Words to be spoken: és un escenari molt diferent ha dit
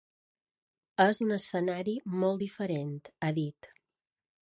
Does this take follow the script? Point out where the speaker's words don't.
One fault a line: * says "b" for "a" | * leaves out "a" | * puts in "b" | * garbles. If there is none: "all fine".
all fine